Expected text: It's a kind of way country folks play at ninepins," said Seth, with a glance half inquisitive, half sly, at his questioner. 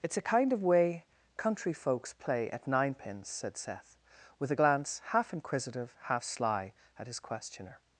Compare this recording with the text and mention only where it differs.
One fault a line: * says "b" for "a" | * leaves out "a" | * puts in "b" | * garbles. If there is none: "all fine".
all fine